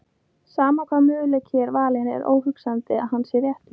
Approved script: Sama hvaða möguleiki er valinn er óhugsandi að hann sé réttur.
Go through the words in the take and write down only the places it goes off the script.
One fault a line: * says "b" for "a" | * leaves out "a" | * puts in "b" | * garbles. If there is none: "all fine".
all fine